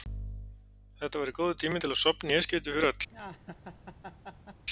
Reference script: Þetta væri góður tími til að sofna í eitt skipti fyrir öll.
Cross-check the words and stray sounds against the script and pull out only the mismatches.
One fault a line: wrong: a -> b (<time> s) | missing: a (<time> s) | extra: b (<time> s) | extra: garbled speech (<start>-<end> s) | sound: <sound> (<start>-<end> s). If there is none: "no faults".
sound: laugh (3.1-4.6 s)